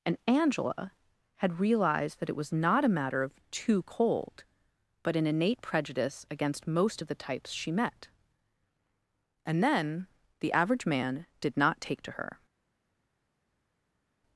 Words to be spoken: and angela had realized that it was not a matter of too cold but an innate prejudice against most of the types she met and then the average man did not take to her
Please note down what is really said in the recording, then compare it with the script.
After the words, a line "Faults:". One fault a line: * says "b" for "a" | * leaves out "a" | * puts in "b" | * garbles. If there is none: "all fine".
and angela had realized that it was not a matter of too cold but an innate prejudice against most of the types she met and then the average man did not take to her
Faults:
all fine